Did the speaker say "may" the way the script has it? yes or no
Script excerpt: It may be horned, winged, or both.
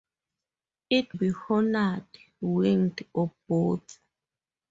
no